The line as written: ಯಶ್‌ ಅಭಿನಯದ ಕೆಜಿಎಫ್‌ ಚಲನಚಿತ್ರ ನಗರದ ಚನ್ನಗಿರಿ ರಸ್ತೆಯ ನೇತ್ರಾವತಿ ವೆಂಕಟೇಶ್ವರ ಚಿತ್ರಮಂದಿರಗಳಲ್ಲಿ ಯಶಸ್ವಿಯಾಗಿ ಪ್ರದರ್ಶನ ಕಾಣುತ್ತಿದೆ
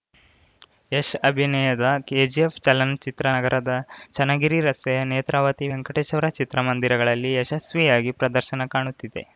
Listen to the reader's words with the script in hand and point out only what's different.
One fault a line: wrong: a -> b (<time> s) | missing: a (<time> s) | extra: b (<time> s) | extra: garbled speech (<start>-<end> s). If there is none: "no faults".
no faults